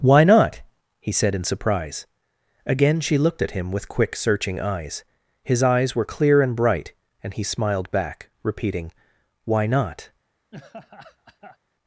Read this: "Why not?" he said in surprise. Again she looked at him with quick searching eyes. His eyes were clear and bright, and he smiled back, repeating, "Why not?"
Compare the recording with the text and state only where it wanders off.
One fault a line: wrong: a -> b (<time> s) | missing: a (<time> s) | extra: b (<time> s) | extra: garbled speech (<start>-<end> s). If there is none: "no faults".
no faults